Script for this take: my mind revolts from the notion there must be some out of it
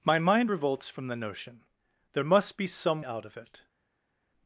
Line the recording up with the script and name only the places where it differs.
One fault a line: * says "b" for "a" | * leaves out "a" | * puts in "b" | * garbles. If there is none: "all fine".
all fine